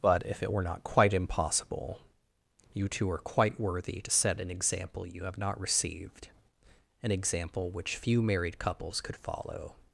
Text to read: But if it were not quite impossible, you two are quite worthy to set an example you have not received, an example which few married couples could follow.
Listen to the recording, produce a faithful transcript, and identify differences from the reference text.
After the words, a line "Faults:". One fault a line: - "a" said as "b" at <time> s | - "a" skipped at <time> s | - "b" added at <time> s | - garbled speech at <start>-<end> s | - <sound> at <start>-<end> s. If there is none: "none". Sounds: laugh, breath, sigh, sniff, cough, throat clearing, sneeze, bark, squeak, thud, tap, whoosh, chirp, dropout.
But if it were not quite impossible, you two are quite worthy to set an example you have not received, an example which few married couples could follow.
Faults:
none